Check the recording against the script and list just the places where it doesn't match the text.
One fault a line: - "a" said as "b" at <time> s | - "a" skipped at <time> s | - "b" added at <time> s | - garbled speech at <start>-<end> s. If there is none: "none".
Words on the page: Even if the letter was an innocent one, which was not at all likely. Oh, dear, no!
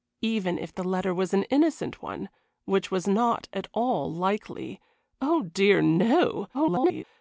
- garbled speech at 6.5-7.0 s